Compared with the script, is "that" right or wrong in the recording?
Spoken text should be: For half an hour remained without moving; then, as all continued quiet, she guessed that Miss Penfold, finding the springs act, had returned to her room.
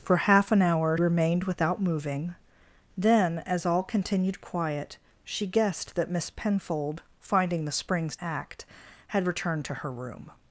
right